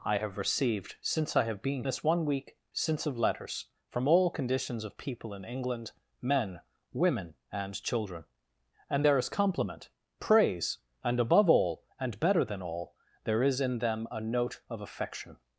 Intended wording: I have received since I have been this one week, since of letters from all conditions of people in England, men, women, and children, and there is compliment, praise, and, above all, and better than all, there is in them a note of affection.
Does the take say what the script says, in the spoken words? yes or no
yes